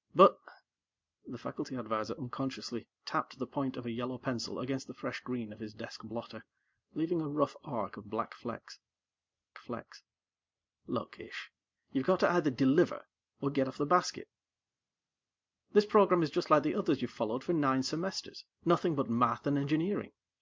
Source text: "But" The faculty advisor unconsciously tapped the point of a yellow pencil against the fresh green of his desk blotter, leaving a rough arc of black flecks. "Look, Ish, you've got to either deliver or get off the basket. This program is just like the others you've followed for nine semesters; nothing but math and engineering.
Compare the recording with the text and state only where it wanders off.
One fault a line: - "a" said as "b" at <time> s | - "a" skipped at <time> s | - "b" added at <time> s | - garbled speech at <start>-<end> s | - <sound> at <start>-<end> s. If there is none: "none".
- "flecks" added at 9.6 s